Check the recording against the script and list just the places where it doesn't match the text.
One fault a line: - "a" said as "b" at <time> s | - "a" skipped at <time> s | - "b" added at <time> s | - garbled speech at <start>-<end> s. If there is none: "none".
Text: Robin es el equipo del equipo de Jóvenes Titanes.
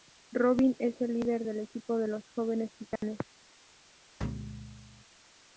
- "equipo" said as "líder" at 1.1 s
- "los" added at 2.1 s